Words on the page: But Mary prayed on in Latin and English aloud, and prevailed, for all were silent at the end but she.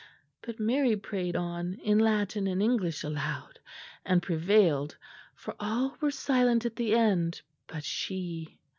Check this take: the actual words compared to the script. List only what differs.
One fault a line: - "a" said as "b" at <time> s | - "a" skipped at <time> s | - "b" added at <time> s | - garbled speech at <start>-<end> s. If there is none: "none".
none